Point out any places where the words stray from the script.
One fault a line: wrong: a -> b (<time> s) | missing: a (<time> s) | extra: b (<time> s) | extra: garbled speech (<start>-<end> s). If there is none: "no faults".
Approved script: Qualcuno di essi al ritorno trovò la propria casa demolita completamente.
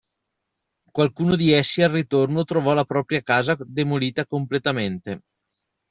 no faults